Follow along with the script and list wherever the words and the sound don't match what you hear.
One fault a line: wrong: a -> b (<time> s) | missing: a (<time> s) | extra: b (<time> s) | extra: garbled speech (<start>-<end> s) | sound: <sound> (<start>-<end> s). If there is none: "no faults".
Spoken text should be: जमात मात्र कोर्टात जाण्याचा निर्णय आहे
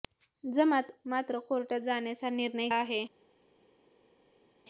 no faults